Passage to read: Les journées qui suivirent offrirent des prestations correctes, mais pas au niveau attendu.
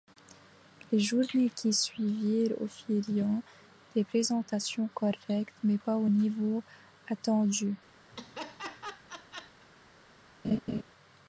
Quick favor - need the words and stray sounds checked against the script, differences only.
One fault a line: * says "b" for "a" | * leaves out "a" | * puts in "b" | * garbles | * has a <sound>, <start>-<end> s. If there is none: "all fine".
* has a laugh, 8.1-9.7 s
* has a laugh, 10.4-10.8 s